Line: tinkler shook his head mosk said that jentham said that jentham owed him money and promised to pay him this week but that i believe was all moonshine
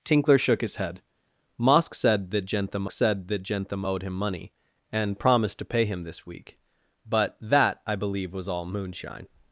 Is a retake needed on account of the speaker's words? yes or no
no